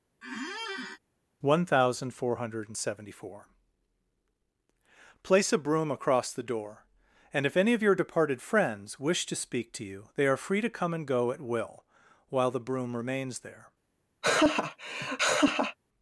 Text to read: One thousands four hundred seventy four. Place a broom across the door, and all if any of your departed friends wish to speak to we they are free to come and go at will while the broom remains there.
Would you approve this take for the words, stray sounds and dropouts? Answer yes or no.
no